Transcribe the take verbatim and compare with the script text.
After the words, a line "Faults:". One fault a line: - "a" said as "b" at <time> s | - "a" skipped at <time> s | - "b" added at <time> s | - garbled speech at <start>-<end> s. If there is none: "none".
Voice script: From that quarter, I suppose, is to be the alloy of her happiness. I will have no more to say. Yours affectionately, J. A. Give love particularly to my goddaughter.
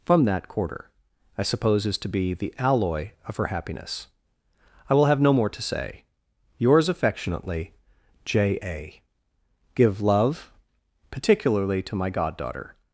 From that quarter, I suppose, is to be the alloy of her happiness. I will have no more to say. Yours affectionately, J. A. Give love particularly to my goddaughter.
Faults:
none